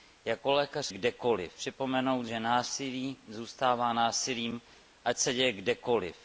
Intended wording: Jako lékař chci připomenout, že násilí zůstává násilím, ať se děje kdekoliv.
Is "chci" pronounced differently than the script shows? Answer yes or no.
yes